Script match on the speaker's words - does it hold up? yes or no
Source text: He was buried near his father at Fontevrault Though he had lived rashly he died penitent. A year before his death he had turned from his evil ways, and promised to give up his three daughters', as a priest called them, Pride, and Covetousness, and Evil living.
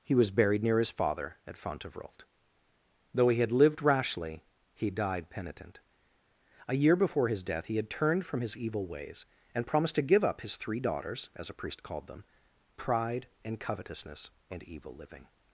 yes